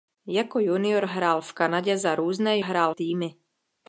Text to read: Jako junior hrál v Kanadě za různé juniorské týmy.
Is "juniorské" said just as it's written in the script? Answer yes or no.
no